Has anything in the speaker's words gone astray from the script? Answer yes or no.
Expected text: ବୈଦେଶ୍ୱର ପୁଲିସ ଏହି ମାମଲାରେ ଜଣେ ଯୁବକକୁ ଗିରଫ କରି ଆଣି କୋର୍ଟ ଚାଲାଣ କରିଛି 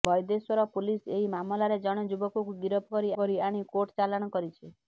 yes